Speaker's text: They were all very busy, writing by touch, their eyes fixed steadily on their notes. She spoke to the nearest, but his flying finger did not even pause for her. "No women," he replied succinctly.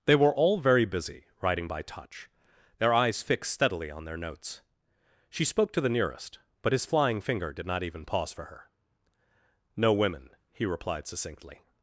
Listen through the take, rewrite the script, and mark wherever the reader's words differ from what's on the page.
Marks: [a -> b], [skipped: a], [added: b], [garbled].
They were all very busy, writing by touch, their eyes fixed steadily on their notes. She spoke to the nearest, but his flying finger did not even pause for her. "No women," he replied succinctly.